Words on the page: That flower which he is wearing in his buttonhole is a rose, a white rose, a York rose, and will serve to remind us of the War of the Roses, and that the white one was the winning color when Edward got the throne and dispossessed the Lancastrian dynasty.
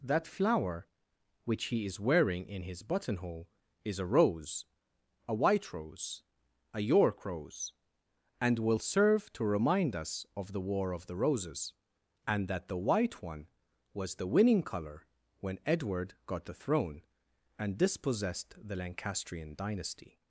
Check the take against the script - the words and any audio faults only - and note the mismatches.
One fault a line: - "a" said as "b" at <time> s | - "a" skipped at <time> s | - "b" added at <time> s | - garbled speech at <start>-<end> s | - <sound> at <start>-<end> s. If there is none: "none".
none